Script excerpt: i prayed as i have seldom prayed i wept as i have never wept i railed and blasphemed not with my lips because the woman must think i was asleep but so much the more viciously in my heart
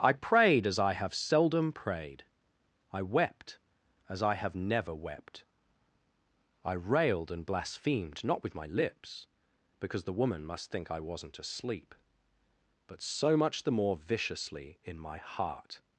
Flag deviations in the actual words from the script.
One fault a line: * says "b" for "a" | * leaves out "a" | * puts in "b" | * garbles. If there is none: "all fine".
* says "wasn't" for "was"